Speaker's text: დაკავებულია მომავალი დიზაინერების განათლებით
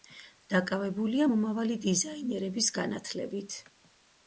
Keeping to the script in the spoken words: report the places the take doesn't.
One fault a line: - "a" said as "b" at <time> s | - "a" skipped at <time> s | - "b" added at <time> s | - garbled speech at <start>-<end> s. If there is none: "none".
none